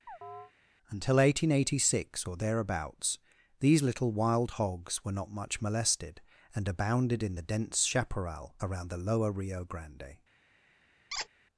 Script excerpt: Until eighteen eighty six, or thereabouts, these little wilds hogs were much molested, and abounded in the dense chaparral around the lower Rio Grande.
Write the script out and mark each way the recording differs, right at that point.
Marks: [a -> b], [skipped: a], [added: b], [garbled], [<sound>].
[chirp] Until eighteen eighty six, or thereabouts, these little [wilds -> wild] hogs were [added: not] much molested, and abounded in the dense chaparral around the lower Rio Grande. [squeak]